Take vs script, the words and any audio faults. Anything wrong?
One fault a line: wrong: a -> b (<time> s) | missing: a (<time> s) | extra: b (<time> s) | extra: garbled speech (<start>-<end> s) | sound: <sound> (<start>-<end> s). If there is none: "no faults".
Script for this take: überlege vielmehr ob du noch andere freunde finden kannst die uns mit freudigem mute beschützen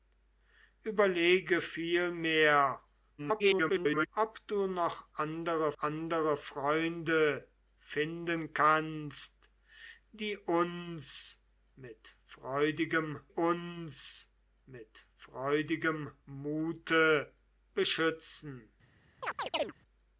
extra: garbled speech (3.2-4.1 s)
extra: andere (5.8 s)
extra: uns mit freudigem (13.3 s)
sound: chirp (19.2-19.7 s)